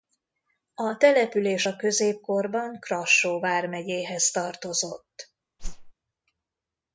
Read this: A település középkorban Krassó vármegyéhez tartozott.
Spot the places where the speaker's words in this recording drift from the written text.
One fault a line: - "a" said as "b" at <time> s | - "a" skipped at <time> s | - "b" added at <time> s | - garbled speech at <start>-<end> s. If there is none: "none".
- "a" added at 1.6 s